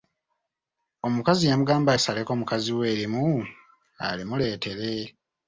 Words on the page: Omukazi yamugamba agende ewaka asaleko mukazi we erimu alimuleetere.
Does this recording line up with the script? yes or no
no